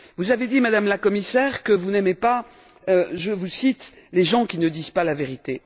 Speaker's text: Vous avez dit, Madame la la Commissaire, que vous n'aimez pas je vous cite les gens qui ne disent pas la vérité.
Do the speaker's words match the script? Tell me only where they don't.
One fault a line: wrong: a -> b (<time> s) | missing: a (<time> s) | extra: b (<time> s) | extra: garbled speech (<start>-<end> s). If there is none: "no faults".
missing: la (1.0 s)